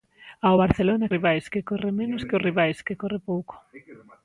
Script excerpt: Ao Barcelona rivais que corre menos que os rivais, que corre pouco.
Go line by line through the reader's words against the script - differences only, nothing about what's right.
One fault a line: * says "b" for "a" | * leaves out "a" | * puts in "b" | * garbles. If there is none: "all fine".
all fine